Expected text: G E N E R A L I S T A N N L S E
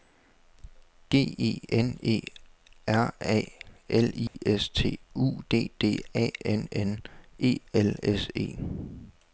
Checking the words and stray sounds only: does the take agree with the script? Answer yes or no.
no